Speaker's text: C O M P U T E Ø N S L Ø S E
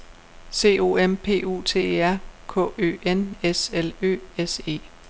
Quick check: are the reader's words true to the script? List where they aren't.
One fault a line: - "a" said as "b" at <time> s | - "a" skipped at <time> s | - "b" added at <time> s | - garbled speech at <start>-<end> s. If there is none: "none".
- "R K" added at 2.0 s